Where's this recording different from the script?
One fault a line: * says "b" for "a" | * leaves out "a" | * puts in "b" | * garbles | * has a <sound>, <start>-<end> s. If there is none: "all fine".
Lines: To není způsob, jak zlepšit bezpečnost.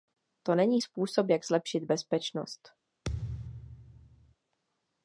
* has a thud, 3.1-4.4 s